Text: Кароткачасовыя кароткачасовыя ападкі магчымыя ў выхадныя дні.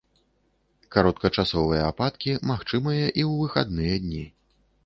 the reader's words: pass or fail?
fail